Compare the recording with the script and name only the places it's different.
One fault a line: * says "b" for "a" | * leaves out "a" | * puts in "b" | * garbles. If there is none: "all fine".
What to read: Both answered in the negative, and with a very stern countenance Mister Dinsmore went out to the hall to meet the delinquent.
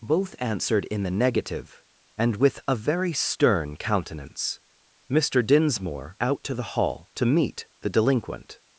* leaves out "went"